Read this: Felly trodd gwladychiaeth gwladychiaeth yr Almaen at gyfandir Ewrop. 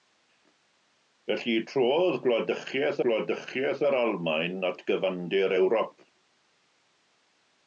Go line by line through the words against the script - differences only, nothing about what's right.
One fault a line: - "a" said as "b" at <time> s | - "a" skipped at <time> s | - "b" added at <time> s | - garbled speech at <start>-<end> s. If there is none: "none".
none